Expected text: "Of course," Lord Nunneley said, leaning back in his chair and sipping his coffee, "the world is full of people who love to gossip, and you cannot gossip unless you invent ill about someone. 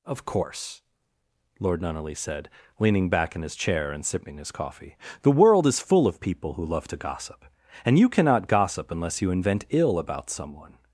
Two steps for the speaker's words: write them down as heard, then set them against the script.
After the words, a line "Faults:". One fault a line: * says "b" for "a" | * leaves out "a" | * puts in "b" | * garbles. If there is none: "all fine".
"Of course," Lord Nunneley said, leaning back in his chair and sipping his coffee, "the world is full of people who love to gossip, and you cannot gossip unless you invent ill about someone.
Faults:
all fine